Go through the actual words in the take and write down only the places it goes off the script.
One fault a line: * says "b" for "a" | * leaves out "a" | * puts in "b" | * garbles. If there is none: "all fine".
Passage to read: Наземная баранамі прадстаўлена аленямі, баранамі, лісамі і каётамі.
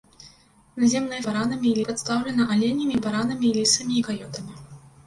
all fine